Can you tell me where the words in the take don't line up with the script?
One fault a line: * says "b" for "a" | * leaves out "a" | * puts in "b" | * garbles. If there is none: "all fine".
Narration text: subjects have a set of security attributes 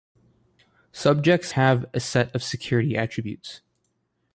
all fine